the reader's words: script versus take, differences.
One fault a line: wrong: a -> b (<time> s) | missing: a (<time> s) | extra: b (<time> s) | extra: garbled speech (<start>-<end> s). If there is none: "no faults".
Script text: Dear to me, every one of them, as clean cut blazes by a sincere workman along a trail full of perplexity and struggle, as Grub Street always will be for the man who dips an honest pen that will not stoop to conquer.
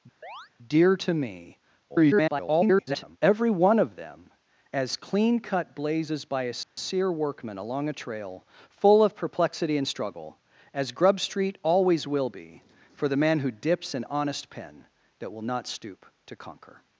extra: garbled speech (1.9-3.2 s)